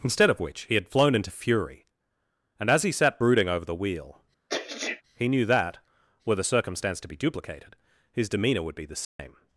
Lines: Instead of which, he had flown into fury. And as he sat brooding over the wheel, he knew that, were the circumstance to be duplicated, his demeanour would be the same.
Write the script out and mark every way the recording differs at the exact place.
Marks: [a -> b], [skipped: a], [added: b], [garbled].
Instead of which, he had flown into fury. And as he sat brooding over the wheel, he knew that, were the circumstance to be duplicated, his demeanour would be the same.